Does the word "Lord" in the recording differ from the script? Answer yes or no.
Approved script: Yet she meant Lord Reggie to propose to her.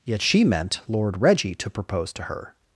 no